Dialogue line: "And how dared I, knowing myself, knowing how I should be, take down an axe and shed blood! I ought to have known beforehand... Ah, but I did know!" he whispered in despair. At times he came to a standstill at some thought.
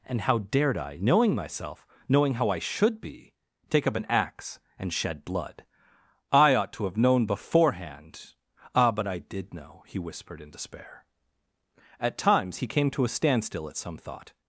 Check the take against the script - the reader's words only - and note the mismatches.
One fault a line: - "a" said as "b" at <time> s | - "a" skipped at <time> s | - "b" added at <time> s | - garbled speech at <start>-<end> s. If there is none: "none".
- "down" said as "up" at 3.9 s